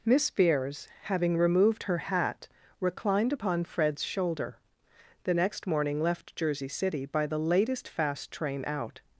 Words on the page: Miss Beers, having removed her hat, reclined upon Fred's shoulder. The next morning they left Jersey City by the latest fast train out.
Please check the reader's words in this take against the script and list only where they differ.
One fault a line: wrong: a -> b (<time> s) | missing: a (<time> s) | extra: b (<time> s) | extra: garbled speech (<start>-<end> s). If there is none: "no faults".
missing: they (6.0 s)